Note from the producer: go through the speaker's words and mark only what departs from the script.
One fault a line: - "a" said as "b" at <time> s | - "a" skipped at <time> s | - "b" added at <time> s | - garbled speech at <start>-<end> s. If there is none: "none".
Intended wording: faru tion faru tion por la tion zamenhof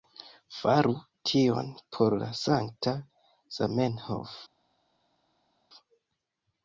- "faru tion" skipped at 1.7 s
- "tion" said as "sankta" at 2.4 s